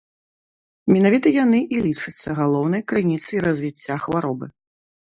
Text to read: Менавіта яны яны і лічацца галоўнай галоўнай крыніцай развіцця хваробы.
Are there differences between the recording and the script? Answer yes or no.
yes